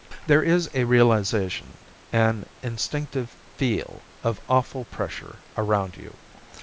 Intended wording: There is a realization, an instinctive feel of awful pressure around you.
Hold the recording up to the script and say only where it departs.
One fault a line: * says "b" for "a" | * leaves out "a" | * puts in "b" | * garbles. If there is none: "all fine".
all fine